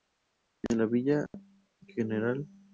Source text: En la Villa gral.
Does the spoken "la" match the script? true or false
true